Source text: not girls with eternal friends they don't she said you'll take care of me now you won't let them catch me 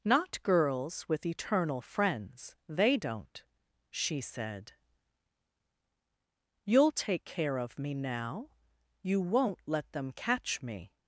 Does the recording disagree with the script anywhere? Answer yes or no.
no